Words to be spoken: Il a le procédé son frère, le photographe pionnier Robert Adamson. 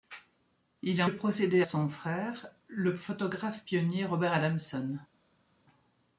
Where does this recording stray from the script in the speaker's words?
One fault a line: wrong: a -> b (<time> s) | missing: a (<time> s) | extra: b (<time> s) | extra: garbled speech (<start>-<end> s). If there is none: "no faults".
no faults